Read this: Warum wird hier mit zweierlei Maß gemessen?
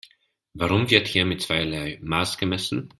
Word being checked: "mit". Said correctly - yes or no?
yes